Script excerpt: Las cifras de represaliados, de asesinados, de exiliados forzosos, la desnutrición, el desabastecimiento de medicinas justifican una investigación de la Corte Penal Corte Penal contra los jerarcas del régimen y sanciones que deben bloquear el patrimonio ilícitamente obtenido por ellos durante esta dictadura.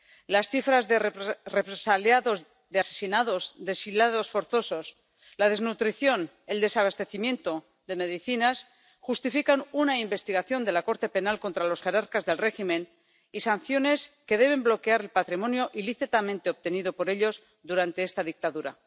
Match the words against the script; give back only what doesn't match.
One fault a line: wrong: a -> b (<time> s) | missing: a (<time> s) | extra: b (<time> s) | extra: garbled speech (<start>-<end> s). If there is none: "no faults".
missing: Corte Penal (11.4 s)